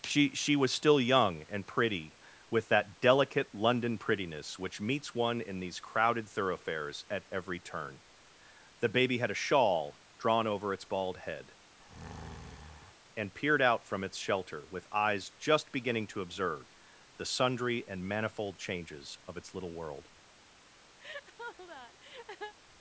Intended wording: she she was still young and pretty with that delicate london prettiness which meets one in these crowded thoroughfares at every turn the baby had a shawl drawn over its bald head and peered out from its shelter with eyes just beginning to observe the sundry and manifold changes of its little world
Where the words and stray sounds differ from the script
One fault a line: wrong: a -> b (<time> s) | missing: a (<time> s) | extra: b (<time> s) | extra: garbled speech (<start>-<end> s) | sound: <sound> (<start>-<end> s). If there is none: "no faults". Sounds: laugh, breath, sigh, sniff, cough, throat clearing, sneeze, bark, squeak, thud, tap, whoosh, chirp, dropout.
sound: breath (11.8-12.9 s)
sound: laugh (21.0-22.5 s)